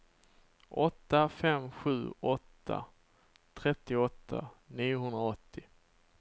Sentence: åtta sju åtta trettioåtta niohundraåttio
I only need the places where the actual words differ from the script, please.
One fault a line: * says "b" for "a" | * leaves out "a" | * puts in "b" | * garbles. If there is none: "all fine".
* puts in "fem"